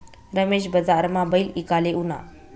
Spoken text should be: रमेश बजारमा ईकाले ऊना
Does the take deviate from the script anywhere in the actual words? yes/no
yes